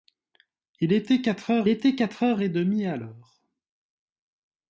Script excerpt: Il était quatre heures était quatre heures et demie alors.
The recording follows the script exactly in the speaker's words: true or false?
true